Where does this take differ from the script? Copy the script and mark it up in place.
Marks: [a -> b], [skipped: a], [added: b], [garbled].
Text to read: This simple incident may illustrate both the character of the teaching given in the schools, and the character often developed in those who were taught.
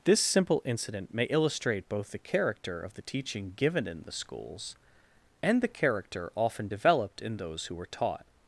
This simple incident may illustrate both the character of the teaching given in the schools, and the character often developed in those who were taught.